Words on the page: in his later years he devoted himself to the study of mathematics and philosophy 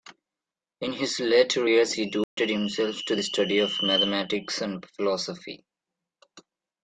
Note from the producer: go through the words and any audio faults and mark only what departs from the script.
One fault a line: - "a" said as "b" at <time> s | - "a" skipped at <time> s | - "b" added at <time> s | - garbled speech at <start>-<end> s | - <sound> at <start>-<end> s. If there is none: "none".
- dropout at 2.2-2.4 s